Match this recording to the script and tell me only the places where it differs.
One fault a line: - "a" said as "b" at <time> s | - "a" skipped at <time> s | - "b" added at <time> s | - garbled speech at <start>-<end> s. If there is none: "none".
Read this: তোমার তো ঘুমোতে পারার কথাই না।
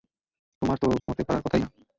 none